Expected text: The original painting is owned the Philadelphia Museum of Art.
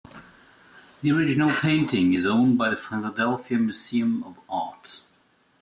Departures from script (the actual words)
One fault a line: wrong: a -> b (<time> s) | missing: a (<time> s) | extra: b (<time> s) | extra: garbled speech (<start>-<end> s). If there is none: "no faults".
extra: by (2.6 s)